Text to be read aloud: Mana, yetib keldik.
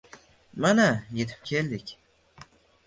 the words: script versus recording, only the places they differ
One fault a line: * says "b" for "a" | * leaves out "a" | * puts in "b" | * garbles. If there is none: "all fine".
all fine